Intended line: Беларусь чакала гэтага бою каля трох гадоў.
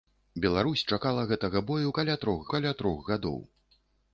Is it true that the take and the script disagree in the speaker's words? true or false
true